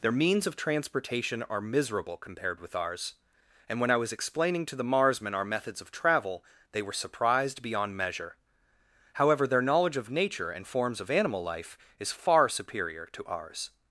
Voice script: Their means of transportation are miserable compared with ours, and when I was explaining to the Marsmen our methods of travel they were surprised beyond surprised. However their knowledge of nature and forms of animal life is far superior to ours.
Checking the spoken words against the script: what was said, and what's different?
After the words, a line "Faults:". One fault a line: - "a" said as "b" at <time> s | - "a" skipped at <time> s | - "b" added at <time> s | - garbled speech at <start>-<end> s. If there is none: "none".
Their means of transportation are miserable compared with ours, and when I was explaining to the Marsmen our methods of travel they were surprised beyond measure. However their knowledge of nature and forms of animal life is far superior to ours.
Faults:
- "surprised" said as "measure" at 8.0 s